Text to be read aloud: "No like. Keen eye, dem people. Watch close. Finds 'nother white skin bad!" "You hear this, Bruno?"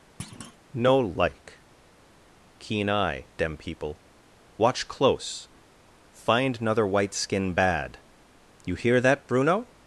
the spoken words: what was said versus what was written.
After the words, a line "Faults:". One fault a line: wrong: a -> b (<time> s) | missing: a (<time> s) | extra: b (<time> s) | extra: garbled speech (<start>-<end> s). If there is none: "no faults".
"No like. Keen eye, dem people. Watch close. Find 'nother white skin bad!" "You hear that, Bruno?"
Faults:
wrong: Finds -> Find (6.1 s)
wrong: this -> that (9.0 s)